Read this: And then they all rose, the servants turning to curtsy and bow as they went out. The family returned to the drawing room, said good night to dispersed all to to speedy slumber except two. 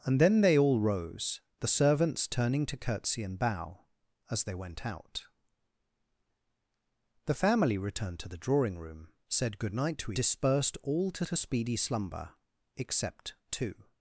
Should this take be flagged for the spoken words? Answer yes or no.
no